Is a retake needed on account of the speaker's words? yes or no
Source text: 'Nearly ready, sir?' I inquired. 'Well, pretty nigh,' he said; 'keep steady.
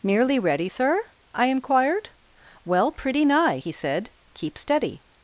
no